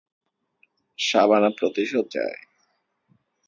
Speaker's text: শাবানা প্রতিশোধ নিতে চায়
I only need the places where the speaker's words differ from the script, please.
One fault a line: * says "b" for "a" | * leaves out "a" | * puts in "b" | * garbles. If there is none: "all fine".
* leaves out "নিতে"